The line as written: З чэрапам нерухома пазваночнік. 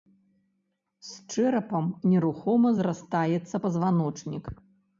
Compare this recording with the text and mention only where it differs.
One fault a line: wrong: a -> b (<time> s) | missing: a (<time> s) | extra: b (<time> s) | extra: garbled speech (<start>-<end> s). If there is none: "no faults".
extra: зрастаецца (2.8 s)